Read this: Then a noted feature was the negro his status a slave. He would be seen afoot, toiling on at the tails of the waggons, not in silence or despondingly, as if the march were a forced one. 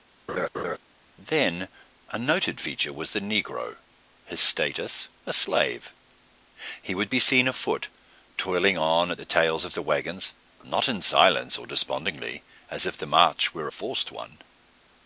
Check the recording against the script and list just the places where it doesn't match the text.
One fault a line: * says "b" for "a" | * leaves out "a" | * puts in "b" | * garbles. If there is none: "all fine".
all fine